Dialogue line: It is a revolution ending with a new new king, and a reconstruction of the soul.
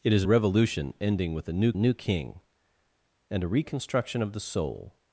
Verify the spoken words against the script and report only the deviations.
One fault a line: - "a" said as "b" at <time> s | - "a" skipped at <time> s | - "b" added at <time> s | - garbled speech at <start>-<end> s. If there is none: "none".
none